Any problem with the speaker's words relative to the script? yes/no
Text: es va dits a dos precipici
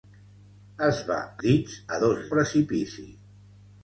no